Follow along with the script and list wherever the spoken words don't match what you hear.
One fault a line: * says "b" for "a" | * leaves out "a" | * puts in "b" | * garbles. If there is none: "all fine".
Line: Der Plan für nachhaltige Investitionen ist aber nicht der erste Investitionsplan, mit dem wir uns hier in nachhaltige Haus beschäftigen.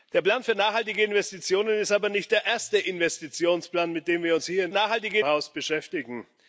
all fine